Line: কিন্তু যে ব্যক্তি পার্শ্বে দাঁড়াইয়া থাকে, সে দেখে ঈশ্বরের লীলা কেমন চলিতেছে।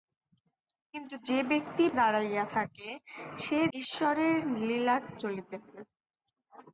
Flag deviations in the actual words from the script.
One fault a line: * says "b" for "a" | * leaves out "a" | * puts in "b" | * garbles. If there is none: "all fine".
* leaves out "পার্শ্বে"
* leaves out "দেখে"
* leaves out "কেমন"